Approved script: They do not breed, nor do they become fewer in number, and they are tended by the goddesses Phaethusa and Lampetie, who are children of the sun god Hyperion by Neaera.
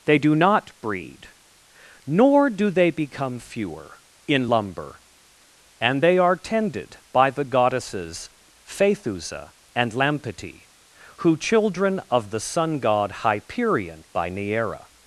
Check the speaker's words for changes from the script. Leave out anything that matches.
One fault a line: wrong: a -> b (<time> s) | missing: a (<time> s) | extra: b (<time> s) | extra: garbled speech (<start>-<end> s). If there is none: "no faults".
wrong: number -> lumber (4.5 s)
missing: are (11.4 s)